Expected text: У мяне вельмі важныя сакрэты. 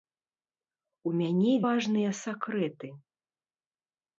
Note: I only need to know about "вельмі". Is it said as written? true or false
false